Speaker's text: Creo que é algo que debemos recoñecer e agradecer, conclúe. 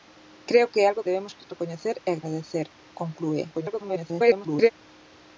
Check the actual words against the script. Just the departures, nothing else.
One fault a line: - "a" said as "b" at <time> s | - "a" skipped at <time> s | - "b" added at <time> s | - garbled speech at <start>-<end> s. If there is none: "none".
- "que" skipped at 1.1 s
- garbled speech at 3.5-4.7 s